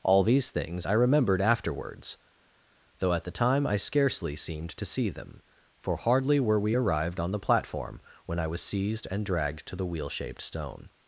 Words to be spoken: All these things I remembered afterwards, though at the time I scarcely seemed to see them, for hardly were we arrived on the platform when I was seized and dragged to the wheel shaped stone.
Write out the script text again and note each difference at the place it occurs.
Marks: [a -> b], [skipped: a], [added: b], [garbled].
All these things I remembered afterwards, though at the time I scarcely seemed to see them, for hardly were we arrived on the platform when I was seized and dragged to the wheel shaped stone.